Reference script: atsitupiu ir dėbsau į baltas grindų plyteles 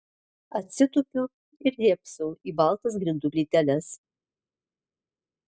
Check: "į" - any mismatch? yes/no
no